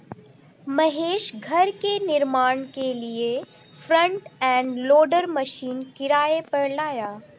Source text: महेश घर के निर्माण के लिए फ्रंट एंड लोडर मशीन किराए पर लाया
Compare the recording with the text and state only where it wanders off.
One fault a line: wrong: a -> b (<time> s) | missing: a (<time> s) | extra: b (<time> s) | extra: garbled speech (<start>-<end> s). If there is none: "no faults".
no faults